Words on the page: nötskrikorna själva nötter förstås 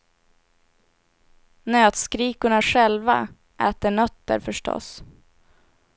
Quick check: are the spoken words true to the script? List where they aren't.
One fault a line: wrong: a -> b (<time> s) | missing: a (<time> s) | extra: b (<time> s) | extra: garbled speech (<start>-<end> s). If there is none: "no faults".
extra: äter (3.6 s)